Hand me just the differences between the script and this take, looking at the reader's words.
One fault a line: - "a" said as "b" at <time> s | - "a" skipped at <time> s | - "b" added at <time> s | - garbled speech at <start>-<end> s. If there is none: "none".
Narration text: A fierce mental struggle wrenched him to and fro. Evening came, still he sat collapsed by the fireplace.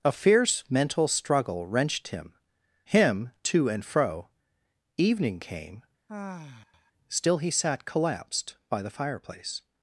- "him" added at 2.9 s